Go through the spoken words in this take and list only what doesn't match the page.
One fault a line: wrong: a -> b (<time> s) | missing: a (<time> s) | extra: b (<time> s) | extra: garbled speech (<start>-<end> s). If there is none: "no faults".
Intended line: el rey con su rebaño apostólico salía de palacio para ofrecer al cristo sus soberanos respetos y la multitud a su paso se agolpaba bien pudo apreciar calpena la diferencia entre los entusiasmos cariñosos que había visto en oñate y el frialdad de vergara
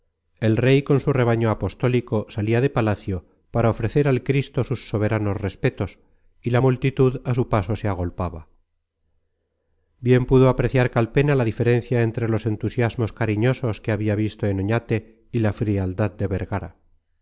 wrong: el -> la (15.4 s)